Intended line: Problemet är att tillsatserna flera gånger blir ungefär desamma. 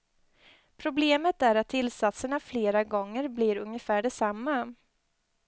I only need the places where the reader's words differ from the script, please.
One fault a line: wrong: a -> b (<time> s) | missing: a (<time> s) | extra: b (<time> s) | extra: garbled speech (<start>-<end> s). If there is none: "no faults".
no faults